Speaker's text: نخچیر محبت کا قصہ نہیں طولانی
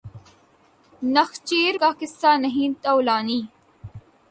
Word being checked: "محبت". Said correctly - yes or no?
no